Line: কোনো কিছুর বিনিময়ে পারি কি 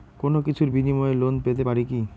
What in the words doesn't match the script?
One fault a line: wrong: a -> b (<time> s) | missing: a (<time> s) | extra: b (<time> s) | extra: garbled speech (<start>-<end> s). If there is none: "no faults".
extra: লোন পেতে (1.1 s)